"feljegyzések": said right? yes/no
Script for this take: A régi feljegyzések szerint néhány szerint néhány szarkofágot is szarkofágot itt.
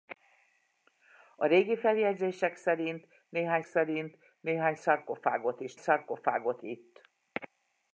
yes